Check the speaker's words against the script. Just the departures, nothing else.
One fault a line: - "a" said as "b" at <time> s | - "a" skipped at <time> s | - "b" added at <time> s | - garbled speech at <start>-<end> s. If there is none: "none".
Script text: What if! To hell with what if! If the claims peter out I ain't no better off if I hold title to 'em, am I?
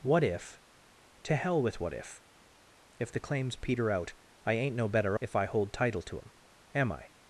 - "off" skipped at 5.2 s